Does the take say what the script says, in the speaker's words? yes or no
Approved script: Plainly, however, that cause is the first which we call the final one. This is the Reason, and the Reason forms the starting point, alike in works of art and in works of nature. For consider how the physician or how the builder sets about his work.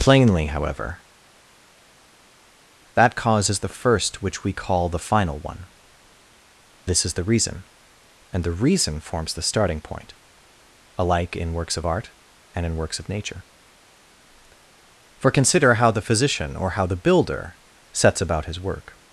yes